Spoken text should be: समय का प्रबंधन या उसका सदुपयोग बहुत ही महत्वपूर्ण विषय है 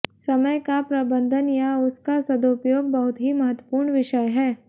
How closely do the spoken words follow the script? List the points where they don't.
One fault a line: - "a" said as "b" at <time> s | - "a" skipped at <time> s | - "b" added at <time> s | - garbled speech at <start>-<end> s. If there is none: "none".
none